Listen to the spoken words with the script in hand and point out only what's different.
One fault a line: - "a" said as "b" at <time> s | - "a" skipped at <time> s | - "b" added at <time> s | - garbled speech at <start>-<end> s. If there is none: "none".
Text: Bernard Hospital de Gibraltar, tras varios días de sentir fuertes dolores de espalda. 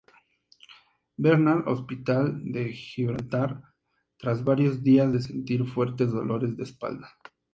none